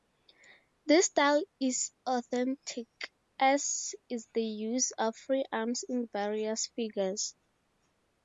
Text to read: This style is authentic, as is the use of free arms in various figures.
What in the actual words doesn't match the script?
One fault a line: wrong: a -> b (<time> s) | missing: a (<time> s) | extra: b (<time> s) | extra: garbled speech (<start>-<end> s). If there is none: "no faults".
no faults